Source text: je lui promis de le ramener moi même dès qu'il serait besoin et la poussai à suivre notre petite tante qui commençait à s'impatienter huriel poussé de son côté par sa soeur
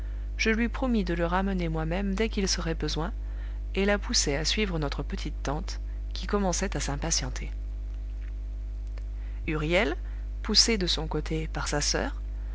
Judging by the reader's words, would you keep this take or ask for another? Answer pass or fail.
pass